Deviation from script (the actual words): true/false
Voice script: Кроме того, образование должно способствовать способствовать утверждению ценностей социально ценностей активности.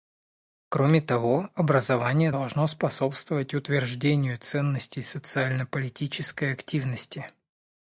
true